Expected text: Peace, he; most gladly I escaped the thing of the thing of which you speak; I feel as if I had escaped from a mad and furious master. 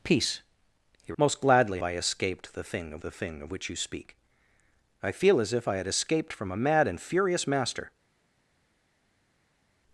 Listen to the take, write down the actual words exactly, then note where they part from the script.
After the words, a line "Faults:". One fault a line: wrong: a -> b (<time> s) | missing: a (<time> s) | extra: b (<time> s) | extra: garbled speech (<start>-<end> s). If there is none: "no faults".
Peace, he; most gladly I escaped the thing of the thing of which you speak; I feel as if I had escaped from a mad and furious master.
Faults:
no faults